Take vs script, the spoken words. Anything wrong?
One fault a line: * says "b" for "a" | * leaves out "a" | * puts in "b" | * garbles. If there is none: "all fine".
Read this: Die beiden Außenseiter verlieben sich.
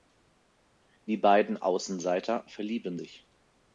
all fine